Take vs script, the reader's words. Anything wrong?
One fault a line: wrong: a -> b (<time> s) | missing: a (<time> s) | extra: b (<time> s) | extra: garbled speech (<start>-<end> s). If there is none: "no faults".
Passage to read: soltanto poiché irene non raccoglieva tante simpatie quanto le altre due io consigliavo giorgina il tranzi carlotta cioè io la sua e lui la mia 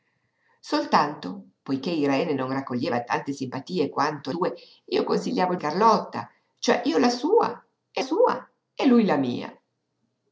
missing: le altre (4.3 s)
missing: giorgina il tranzi (5.6 s)
extra: sua e (8.0 s)